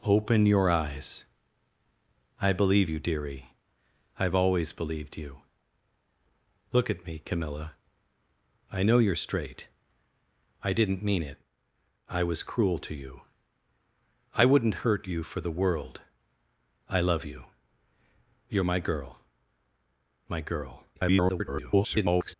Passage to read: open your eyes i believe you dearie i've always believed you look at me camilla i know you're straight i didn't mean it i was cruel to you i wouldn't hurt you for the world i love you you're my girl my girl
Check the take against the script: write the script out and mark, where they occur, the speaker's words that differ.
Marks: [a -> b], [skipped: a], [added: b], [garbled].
open your eyes i believe you dearie i've always believed you look at me camilla i know you're straight i didn't mean it i was cruel to you i wouldn't hurt you for the world i love you you're my girl my girl [garbled]